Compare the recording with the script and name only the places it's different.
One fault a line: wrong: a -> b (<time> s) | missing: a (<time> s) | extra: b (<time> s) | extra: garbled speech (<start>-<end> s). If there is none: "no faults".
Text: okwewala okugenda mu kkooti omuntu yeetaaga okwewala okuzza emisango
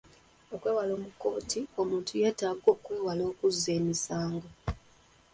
missing: okugenda (0.9 s)